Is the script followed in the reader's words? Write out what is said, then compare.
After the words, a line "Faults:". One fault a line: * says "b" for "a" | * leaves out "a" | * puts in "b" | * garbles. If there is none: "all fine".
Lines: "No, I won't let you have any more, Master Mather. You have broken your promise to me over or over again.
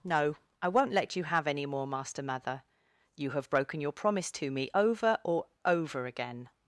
"No, I won't let you have any more, Master Mather. You have broken your promise to me over or over again.
Faults:
all fine